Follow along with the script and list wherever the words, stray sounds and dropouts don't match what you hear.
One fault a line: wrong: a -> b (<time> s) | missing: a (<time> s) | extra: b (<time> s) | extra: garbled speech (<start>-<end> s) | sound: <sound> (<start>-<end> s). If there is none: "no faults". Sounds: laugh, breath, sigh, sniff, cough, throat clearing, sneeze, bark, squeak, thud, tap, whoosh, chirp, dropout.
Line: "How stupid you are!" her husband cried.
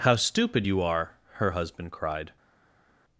no faults